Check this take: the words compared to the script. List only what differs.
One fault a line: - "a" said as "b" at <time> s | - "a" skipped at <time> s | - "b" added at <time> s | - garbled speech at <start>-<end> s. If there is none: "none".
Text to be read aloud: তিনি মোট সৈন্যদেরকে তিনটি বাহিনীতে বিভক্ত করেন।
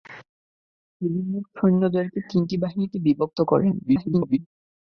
- garbled speech at 3.8-4.4 s